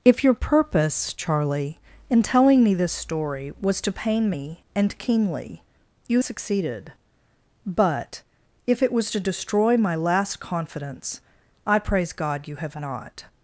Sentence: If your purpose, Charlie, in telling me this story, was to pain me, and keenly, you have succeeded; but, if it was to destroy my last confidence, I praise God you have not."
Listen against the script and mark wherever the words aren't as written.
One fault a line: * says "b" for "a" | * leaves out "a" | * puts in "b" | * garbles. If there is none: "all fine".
* leaves out "have"